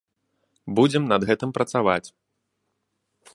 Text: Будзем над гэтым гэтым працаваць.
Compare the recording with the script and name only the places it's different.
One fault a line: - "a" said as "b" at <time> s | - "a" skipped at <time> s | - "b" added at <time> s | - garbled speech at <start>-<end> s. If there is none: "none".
- "гэтым" skipped at 1.5 s